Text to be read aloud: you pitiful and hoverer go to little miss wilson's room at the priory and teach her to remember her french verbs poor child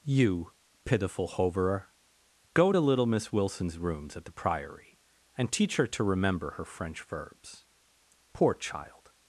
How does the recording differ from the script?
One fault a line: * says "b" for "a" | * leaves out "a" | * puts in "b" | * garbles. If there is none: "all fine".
* leaves out "and"
* says "rooms" for "room"